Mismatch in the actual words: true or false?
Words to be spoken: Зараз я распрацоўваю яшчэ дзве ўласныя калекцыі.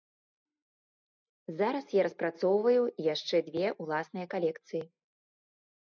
false